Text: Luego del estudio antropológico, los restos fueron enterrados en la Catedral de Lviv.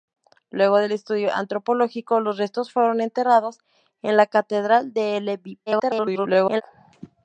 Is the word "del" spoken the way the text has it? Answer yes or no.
yes